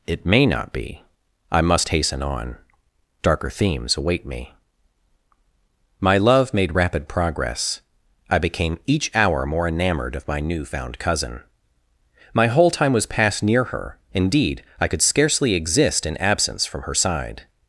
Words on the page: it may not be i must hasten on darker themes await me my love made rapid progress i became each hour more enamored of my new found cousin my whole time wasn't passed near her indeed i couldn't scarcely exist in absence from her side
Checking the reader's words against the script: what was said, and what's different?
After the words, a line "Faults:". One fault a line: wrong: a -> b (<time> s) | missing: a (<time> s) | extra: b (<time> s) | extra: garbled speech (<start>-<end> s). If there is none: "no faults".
it may not be i must hasten on darker themes await me my love made rapid progress i became each hour more enamored of my new found cousin my whole time was passed near her indeed i could scarcely exist in absence from her side
Faults:
wrong: wasn't -> was (12.9 s)
wrong: couldn't -> could (14.9 s)